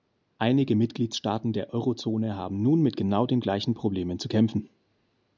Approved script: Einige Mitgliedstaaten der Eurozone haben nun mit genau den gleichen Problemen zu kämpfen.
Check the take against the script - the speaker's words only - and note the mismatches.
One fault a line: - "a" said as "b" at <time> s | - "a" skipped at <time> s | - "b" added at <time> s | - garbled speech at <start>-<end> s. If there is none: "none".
none